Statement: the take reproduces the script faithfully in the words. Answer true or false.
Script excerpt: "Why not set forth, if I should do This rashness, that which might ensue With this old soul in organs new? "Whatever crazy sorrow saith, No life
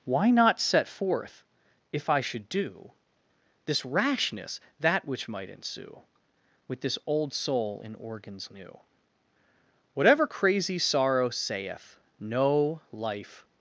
true